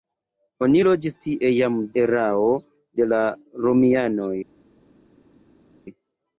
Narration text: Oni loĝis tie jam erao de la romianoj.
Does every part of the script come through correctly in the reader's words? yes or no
yes